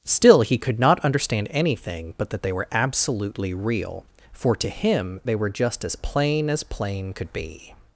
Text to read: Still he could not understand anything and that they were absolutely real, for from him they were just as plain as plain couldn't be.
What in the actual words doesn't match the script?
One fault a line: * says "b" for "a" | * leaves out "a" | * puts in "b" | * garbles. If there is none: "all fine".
* says "but" for "and"
* says "to" for "from"
* says "could" for "couldn't"